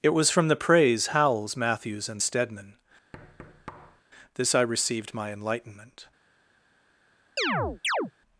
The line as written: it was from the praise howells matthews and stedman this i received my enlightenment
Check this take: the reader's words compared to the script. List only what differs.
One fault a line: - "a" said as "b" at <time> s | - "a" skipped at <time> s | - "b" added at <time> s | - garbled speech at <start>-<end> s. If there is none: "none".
none